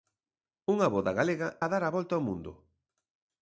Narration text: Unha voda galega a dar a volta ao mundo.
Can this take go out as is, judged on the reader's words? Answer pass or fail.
pass